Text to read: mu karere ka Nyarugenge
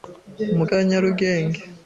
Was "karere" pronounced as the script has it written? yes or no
no